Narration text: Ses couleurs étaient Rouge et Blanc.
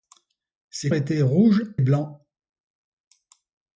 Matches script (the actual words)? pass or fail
fail